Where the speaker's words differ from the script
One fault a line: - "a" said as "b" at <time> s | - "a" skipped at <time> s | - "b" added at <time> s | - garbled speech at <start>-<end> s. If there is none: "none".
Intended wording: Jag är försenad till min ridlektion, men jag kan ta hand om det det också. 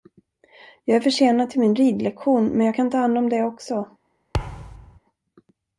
- "det" skipped at 3.4 s